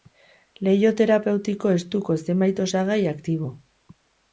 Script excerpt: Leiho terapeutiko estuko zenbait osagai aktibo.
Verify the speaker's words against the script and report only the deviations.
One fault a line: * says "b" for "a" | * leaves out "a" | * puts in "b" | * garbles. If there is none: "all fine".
all fine